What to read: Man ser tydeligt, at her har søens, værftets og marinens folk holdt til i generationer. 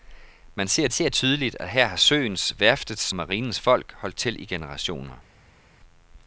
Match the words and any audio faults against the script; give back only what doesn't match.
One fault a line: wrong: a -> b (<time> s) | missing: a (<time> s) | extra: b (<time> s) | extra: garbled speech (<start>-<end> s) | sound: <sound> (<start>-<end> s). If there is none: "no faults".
extra: ser (0.9 s)
missing: og (3.1 s)